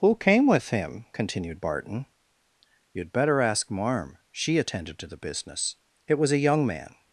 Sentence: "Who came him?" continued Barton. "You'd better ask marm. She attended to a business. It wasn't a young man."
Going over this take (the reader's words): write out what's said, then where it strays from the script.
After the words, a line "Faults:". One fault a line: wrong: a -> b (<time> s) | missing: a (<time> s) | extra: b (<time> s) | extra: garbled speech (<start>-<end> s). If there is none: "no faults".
"Who came with him?" continued Barton. "You'd better ask marm. She attended to the business. It was a young man."
Faults:
extra: with (0.5 s)
wrong: a -> the (5.1 s)
wrong: wasn't -> was (6.2 s)